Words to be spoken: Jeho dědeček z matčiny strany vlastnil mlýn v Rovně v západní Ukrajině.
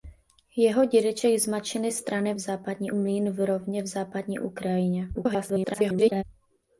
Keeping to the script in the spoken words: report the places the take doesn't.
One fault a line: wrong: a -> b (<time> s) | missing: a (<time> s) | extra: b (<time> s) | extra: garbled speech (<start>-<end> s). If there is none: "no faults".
wrong: vlastnil -> západní (2.4 s)
extra: garbled speech (5.1-6.2 s)